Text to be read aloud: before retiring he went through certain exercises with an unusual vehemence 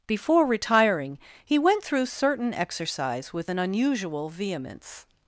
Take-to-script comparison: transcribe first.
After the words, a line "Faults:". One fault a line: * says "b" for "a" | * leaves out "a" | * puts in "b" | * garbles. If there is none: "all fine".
before retiring he went through certain exercise with an unusual vehemence
Faults:
* says "exercise" for "exercises"